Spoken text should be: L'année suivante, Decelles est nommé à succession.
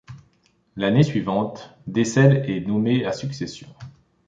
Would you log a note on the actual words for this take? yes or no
no